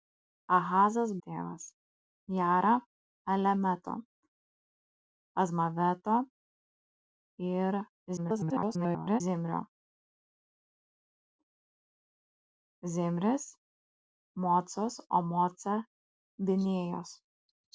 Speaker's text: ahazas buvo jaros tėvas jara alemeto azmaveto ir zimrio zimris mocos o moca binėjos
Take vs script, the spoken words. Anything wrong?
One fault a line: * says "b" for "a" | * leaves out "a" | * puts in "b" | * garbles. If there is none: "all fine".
* leaves out "buvo jaros"
* garbles